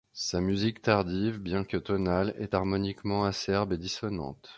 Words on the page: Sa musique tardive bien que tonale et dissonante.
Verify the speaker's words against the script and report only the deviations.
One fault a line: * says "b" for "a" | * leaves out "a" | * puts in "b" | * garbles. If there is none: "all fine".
* puts in "est harmoniquement acerbe"